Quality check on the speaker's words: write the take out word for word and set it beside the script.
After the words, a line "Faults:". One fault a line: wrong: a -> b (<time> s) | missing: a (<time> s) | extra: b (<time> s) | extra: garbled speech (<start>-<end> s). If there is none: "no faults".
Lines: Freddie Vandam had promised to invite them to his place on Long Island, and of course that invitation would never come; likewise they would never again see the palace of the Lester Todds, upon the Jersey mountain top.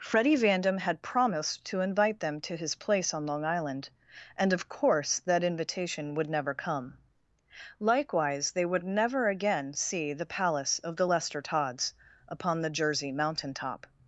Freddie Vandam had promised to invite them to his place on Long Island, and of course that invitation would never come; likewise they would never again see the palace of the Lester Todds, upon the Jersey mountain top.
Faults:
no faults